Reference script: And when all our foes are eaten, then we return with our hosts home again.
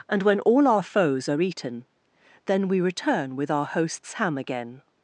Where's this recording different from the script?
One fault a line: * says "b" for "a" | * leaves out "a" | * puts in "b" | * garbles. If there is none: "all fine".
* says "ham" for "home"